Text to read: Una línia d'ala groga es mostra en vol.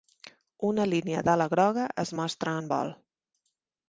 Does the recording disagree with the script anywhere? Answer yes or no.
no